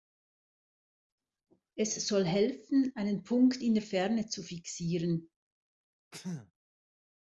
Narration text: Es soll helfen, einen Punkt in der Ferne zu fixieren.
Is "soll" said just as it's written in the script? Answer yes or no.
yes